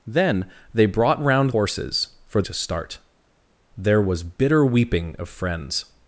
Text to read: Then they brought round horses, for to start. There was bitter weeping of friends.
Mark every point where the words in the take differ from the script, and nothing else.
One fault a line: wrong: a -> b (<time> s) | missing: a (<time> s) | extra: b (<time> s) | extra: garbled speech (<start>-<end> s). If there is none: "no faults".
no faults